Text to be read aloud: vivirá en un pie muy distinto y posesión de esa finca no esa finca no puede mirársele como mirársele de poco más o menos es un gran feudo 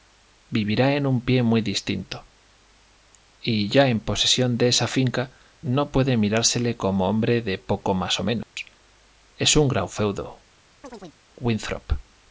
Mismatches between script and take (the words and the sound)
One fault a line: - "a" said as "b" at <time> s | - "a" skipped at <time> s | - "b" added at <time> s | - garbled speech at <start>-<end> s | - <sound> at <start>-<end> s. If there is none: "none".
- "ya en" added at 3.7 s
- "esa finca no" skipped at 5.9 s
- "mirársele" said as "hombre" at 7.1 s
- dropout at 8.4-8.6 s
- chirp at 10.8-11.2 s